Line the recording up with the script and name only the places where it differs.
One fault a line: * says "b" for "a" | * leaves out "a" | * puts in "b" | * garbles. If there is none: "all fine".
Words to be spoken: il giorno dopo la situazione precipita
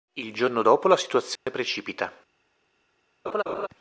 all fine